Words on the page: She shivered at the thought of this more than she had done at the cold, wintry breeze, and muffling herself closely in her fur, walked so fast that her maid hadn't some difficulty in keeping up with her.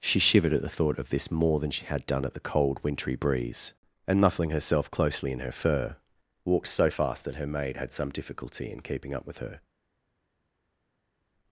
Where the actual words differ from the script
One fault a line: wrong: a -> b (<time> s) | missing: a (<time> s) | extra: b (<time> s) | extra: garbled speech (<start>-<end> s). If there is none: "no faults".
wrong: hadn't -> had (7.7 s)